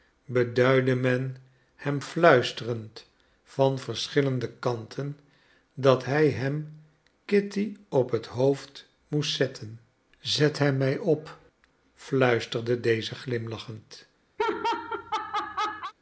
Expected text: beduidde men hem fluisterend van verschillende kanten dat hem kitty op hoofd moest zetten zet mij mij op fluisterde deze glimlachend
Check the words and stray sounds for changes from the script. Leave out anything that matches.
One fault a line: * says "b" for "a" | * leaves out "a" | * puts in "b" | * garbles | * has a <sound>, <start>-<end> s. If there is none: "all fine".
* puts in "hij"
* puts in "het"
* says "hem" for "mij"
* has a laugh, 14.4-15.9 s